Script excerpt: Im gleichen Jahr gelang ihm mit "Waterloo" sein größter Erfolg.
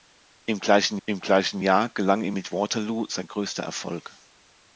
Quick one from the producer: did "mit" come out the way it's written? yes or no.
yes